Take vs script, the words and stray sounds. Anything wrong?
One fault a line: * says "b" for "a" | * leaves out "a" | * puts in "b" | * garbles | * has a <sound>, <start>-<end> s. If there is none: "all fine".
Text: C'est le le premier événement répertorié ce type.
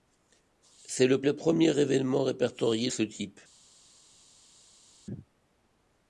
all fine